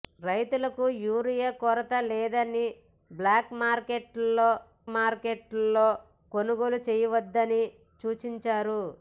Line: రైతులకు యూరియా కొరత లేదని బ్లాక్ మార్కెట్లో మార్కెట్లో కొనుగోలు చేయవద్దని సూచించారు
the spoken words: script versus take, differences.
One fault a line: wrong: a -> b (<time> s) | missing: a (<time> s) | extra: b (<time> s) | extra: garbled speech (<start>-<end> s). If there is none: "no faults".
no faults